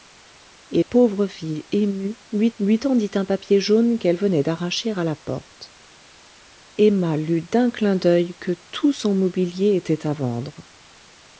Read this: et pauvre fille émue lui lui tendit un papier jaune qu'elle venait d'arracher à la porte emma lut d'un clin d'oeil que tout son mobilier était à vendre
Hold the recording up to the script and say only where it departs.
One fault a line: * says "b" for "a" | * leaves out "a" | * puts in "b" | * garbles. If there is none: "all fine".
all fine